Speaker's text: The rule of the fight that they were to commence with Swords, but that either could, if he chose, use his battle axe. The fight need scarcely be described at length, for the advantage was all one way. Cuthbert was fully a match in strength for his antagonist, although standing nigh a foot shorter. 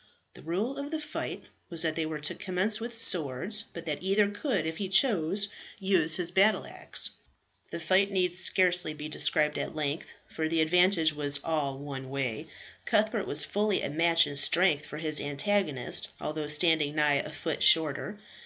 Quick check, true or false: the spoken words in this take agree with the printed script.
false